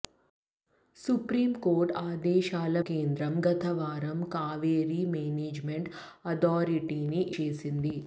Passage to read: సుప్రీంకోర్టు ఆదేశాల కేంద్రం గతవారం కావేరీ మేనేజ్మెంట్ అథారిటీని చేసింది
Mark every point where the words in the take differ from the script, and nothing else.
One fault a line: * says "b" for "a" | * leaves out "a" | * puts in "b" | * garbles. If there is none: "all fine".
all fine